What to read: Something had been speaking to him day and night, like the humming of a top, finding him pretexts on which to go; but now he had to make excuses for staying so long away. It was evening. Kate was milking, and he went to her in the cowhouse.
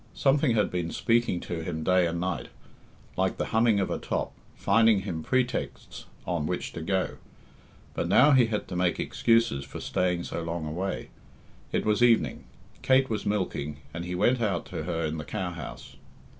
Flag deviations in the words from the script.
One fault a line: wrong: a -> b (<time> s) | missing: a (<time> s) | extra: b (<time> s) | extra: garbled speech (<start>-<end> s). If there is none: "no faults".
extra: out (14.4 s)